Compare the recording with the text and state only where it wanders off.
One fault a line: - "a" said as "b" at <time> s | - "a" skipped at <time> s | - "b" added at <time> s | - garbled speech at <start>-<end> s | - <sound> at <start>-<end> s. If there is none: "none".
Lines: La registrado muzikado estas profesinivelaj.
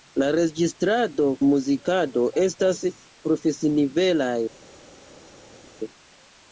none